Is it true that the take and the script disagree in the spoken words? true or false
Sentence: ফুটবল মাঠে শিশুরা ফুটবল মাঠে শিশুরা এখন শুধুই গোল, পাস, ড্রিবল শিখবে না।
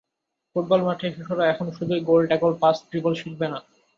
true